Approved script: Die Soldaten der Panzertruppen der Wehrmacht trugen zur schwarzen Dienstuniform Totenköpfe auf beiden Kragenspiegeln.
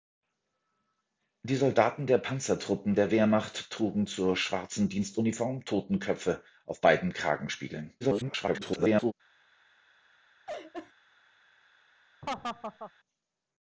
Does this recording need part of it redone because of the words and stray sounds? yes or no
yes